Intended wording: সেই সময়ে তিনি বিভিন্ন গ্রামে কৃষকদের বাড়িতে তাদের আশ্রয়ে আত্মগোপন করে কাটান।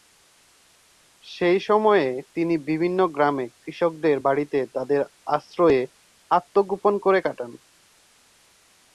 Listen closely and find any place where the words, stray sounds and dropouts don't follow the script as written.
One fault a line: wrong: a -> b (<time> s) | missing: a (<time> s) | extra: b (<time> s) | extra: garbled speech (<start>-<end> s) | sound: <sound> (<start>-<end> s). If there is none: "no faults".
no faults